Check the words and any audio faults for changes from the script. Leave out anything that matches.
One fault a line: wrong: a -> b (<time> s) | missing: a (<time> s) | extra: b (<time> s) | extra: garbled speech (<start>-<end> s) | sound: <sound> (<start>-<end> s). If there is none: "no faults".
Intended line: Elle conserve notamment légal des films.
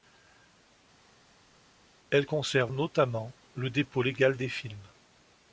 extra: le dépôt (3.5 s)